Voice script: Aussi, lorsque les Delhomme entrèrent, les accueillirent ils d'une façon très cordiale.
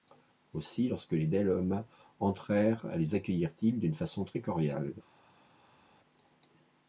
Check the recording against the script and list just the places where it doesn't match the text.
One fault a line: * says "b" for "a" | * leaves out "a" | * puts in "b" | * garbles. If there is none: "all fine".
all fine